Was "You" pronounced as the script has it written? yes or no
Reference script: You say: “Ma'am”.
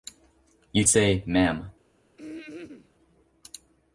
yes